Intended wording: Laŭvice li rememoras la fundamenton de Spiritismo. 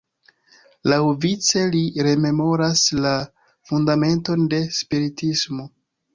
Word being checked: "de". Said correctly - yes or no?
yes